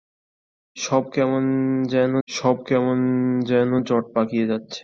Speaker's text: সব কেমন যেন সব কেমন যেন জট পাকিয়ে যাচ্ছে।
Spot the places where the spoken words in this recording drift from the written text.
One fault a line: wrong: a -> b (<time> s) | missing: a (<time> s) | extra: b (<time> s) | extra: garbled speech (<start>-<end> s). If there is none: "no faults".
no faults